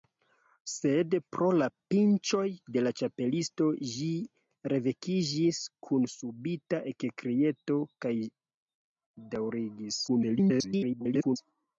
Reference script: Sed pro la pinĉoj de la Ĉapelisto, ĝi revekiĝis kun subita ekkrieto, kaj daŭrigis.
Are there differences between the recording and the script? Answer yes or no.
yes